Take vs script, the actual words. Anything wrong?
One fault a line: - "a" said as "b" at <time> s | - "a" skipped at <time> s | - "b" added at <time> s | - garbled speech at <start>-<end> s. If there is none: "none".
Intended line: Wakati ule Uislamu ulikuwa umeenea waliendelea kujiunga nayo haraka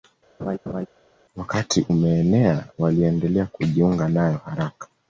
- "ule Uislamu ulikuwa" skipped at 1.8 s